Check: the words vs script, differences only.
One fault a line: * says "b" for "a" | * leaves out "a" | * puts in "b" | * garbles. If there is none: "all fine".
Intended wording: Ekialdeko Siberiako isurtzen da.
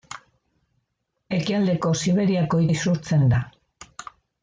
all fine